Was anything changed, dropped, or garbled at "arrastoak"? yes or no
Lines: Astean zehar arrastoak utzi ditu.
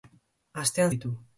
yes